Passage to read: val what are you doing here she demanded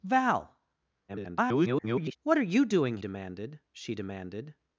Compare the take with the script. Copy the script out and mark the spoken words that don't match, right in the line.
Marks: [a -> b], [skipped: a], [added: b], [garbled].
val [garbled] what are you doing [here -> demanded] she demanded